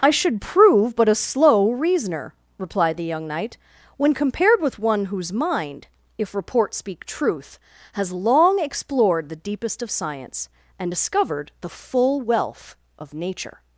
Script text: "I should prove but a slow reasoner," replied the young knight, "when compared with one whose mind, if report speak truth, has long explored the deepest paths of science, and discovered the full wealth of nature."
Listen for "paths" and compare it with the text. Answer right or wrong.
wrong